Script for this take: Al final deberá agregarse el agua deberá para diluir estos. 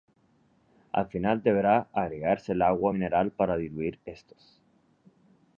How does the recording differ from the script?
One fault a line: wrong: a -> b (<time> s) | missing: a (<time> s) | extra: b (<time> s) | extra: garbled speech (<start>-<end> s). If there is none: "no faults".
wrong: deberá -> mineral (2.9 s)